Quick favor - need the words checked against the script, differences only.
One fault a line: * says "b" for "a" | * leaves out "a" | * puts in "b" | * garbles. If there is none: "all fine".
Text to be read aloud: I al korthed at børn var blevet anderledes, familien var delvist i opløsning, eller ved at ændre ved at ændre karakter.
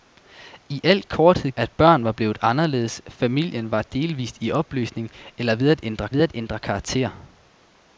all fine